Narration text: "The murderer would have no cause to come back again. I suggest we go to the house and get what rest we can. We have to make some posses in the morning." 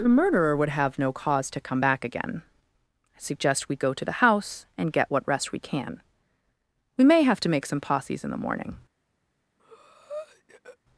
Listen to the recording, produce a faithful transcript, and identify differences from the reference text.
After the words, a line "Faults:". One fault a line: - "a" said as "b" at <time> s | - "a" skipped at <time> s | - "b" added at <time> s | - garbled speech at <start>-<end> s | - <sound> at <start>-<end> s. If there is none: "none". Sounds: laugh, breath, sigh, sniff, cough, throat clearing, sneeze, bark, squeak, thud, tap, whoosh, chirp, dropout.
"The murderer would have no cause to come back again. I suggest we go to the house and get what rest we can. We may have to make some posses in the morning."
Faults:
- "may" added at 7.0 s
- breath at 9.6-10.8 s